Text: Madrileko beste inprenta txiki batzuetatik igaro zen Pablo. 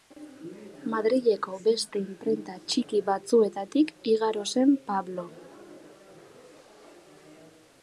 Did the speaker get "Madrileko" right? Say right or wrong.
right